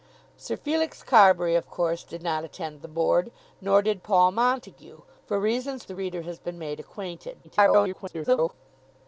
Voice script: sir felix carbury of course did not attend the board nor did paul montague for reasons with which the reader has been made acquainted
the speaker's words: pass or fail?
fail